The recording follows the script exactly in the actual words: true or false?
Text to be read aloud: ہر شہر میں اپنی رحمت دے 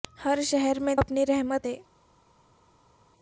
true